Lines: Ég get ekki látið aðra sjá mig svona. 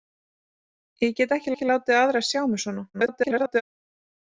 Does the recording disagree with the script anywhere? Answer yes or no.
yes